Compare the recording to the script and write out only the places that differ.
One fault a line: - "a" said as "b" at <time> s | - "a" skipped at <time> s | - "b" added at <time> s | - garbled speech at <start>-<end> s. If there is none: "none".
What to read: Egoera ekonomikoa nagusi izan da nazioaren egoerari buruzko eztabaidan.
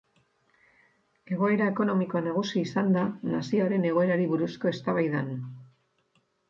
none